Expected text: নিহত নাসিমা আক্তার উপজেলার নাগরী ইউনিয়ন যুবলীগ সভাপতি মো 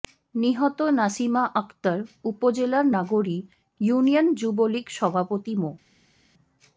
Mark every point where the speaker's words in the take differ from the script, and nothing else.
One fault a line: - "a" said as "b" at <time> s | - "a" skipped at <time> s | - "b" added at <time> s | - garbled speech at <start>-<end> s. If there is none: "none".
none